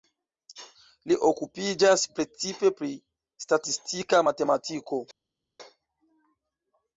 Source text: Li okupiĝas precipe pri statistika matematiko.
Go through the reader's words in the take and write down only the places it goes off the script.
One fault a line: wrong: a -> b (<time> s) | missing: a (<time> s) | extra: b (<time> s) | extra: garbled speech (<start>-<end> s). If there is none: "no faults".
no faults